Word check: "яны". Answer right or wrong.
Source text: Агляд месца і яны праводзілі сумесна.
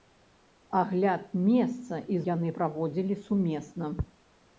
right